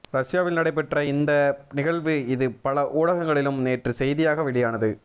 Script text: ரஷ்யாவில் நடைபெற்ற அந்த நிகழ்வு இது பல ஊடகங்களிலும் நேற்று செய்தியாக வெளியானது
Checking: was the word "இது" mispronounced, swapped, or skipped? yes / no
no